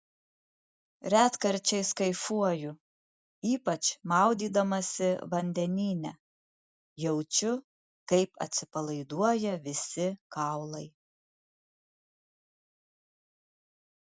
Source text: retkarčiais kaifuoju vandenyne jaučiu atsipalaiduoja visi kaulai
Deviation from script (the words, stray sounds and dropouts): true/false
true